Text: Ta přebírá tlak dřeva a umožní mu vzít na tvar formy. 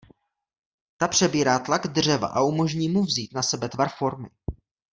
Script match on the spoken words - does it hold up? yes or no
no